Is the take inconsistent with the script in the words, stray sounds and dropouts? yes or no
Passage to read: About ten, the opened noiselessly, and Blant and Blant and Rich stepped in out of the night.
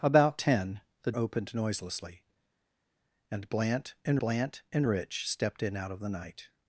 no